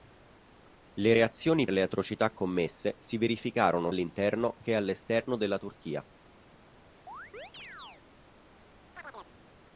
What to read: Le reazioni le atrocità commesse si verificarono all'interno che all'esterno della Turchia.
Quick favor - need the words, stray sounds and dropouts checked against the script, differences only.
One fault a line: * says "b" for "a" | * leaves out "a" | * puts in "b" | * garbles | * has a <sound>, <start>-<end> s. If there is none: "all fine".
* has a chirp, 7.1-8.0 s
* has a chirp, 9.0-9.3 s